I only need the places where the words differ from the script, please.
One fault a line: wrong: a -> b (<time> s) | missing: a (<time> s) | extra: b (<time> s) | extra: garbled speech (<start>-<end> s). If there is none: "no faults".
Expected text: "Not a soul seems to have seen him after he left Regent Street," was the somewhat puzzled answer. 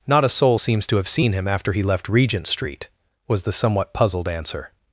no faults